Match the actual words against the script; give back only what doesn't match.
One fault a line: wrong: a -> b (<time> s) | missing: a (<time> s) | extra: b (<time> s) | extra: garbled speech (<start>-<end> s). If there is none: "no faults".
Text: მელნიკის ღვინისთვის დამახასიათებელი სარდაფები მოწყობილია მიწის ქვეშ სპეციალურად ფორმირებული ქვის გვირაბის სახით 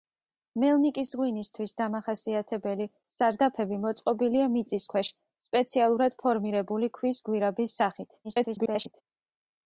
extra: garbled speech (8.2-9.0 s)